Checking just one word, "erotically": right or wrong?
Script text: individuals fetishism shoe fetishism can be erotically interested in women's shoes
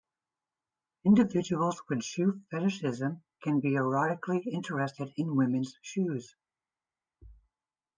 right